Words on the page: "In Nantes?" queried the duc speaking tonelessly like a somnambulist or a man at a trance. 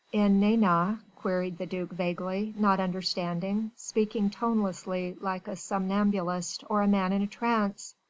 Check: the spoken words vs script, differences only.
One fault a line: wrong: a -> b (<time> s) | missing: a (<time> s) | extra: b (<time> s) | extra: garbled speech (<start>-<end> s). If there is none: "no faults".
extra: vaguely not understanding (1.9 s)
wrong: at -> in (7.1 s)